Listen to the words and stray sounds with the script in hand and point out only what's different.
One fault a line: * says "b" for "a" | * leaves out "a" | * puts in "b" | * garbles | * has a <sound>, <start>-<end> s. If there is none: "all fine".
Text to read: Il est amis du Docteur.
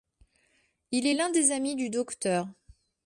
* puts in "l'un des"